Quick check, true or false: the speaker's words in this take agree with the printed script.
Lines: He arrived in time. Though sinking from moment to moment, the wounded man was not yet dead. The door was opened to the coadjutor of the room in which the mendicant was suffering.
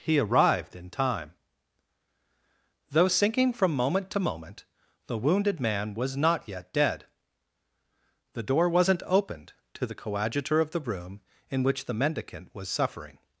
false